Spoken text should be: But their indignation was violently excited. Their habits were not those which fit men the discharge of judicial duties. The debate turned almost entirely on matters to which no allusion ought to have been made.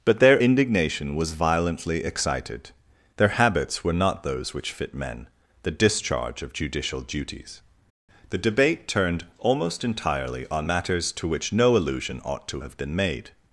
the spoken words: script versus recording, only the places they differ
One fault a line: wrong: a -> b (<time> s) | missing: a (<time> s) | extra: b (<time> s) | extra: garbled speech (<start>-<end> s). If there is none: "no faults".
no faults